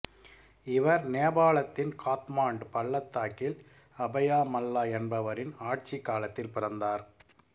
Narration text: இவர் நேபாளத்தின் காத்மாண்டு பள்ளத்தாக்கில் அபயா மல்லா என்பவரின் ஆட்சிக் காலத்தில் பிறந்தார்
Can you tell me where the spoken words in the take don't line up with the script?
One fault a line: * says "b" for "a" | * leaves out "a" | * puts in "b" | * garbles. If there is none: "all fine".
all fine